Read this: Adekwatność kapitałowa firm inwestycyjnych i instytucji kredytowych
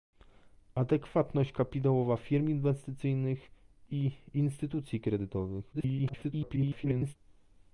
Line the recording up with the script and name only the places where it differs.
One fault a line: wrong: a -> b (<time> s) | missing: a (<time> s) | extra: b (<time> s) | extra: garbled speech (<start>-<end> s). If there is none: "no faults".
extra: garbled speech (5.7-7.2 s)